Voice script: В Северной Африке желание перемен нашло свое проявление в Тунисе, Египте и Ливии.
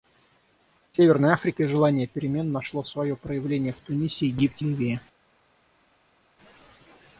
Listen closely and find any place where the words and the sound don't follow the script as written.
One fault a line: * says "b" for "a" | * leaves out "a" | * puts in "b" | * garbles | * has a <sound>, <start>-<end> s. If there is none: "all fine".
* leaves out "и"